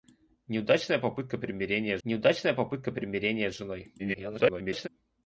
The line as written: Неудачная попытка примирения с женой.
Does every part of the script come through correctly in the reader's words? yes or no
no